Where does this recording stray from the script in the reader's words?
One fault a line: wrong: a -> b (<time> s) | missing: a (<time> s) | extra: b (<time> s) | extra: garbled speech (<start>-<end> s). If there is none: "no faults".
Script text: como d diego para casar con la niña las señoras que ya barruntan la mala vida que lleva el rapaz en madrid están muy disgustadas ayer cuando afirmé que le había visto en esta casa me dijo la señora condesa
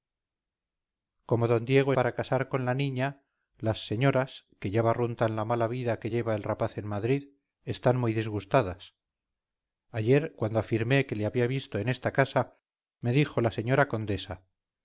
no faults